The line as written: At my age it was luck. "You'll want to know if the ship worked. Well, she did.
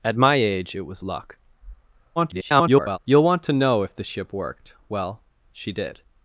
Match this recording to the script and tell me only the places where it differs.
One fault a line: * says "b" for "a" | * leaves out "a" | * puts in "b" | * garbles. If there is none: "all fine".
* garbles